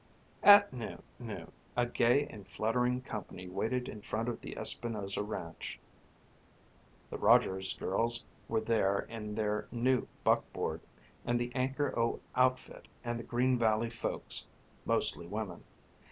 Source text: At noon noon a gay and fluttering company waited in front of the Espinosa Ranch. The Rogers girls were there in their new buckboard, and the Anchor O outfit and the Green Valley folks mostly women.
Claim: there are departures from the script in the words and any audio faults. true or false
false